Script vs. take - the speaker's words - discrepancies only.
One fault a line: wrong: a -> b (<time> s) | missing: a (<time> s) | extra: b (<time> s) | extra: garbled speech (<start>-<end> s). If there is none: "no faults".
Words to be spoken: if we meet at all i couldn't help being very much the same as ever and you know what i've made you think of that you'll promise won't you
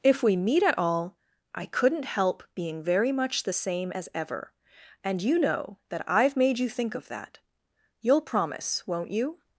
wrong: what -> that (5.9 s)